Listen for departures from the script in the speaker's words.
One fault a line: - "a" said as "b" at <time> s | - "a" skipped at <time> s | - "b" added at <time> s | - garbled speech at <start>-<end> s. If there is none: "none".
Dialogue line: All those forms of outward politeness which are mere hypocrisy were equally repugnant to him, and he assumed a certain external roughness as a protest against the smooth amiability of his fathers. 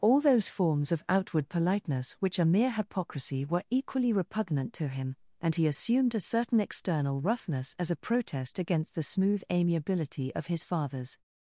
none